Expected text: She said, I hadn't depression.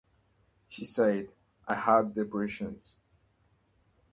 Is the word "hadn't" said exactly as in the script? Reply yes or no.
no